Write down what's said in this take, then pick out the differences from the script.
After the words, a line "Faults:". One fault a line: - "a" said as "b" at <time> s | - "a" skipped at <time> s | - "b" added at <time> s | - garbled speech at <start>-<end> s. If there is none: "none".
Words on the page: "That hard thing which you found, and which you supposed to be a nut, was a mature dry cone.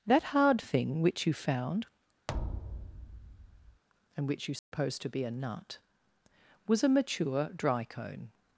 "That hard thing which you found, and which you supposed to be a nut, was a mature dry cone.
Faults:
none